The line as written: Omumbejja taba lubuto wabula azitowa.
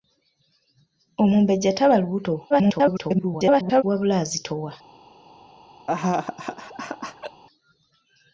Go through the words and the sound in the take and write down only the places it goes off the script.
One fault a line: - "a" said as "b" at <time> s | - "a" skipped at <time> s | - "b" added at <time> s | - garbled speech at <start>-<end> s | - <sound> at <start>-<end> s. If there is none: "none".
- garbled speech at 2.5-3.8 s
- laugh at 5.9-7.4 s